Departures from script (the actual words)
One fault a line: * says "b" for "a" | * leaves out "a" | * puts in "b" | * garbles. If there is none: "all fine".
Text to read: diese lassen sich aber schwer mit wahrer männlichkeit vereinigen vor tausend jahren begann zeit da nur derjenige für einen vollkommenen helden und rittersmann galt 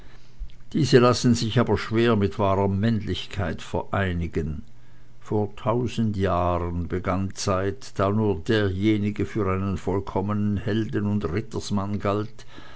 all fine